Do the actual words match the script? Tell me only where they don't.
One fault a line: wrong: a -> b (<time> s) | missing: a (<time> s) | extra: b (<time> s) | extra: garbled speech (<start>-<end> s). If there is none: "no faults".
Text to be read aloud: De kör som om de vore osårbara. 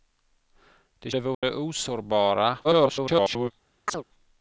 missing: kör som om (1.1 s)
extra: garbled speech (2.6-3.5 s)